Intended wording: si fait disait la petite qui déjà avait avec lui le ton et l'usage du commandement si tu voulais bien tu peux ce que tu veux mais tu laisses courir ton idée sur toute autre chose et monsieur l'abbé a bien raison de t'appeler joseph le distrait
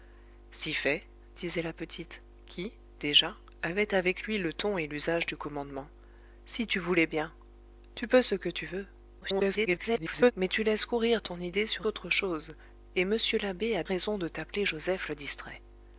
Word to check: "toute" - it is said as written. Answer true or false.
false